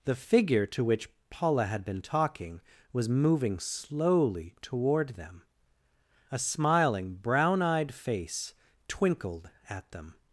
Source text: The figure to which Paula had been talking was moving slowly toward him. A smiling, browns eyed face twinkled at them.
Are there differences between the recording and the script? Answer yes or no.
yes